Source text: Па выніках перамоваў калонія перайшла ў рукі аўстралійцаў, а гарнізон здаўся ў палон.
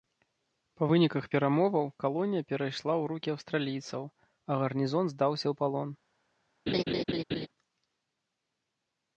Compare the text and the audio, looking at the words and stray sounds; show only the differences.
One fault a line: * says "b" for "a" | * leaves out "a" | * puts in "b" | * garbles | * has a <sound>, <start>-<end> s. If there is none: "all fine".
* has a laugh, 6.7-7.5 s